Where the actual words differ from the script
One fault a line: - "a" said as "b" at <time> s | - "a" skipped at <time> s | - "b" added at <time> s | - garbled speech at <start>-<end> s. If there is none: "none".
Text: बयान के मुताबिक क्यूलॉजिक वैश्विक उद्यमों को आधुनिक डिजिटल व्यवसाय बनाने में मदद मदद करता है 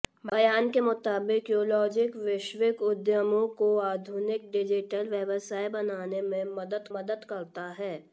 none